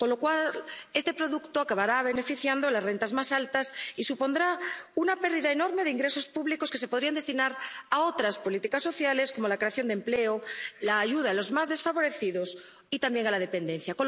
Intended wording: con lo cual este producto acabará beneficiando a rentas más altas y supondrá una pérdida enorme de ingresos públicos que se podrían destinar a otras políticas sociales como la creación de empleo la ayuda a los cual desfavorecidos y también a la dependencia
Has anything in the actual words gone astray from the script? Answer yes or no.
yes